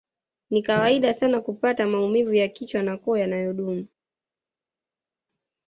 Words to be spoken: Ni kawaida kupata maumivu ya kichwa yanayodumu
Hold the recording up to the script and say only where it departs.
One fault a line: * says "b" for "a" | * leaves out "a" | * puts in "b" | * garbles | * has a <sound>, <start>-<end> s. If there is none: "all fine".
* puts in "sana"
* puts in "na koo"